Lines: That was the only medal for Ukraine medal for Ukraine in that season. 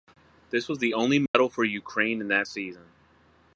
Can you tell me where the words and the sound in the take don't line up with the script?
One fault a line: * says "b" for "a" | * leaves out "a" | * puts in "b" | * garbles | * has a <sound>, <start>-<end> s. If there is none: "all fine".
* says "This" for "That"
* has a dropout, 1.3-1.3 s
* leaves out "medal for Ukraine"